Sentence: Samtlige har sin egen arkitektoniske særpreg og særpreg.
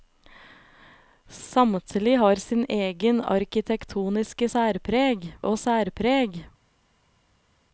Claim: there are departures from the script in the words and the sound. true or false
false